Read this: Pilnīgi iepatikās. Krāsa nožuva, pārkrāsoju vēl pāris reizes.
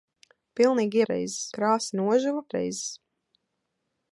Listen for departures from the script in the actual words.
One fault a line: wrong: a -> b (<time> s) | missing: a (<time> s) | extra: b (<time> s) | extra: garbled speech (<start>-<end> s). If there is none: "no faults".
wrong: iepatikās -> reizes (1.1 s)
missing: pārkrāsoju vēl pāris (2.4 s)